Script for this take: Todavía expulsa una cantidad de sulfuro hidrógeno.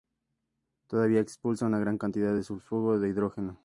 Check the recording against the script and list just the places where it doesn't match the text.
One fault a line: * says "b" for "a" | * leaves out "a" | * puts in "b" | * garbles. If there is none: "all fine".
* puts in "gran"
* puts in "de"